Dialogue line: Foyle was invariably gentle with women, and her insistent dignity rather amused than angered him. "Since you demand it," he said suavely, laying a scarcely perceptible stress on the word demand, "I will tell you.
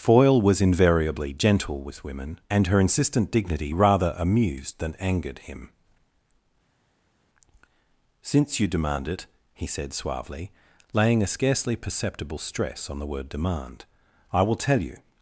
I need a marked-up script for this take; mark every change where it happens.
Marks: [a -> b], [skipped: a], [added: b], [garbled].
Foyle was invariably gentle with women, and her insistent dignity rather amused than angered him. "Since you demand it," he said suavely, laying a scarcely perceptible stress on the word demand, "I will tell you.